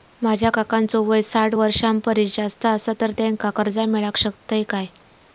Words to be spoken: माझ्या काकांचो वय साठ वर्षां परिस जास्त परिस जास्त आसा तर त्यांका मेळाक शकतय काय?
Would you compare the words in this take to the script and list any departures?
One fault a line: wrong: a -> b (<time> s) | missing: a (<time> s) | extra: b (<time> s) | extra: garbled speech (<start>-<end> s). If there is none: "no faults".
missing: परिस जास्त (2.7 s)
extra: कर्जा (3.6 s)